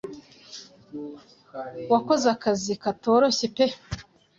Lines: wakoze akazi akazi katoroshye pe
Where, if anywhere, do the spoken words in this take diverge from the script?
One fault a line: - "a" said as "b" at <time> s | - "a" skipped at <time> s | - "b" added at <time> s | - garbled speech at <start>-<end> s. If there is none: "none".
- "akazi" skipped at 2.7 s